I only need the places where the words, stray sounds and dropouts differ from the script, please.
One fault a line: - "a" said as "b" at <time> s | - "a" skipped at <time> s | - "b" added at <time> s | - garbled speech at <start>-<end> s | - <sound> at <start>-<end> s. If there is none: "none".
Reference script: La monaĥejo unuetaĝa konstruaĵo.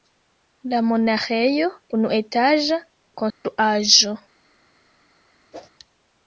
- dropout at 3.3-3.4 s
- whoosh at 5.5-5.7 s